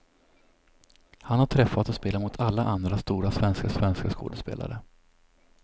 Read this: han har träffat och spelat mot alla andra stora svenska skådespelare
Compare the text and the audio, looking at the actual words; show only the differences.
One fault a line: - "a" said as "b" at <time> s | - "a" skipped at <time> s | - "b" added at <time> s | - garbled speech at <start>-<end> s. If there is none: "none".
- "svenska" added at 3.7 s